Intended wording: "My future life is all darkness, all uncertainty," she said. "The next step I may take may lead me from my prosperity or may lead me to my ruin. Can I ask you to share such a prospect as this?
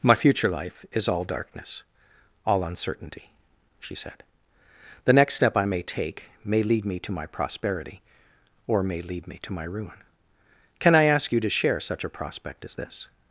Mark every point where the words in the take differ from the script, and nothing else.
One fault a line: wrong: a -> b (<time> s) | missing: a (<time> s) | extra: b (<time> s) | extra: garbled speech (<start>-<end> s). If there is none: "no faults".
wrong: from -> to (7.0 s)